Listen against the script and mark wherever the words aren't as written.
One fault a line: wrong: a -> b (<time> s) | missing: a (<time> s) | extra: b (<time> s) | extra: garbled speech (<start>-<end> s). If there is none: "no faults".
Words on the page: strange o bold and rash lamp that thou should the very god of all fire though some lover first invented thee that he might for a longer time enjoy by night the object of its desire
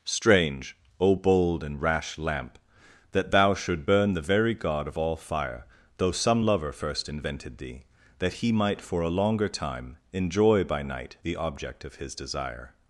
extra: burn (3.8 s)
wrong: its -> his (12.0 s)